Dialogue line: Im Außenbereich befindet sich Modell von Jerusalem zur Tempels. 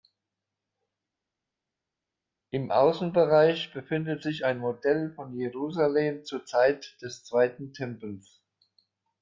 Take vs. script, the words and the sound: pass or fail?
fail